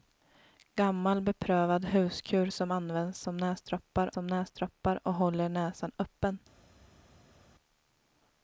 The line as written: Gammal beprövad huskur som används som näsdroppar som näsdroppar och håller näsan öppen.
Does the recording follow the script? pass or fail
pass